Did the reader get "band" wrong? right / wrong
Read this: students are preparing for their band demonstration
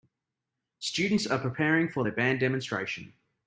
right